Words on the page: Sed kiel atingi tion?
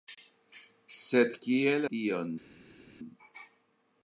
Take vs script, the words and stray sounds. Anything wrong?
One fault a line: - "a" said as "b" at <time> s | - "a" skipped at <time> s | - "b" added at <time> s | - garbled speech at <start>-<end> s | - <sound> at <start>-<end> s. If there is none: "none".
- "atingi" skipped at 1.8 s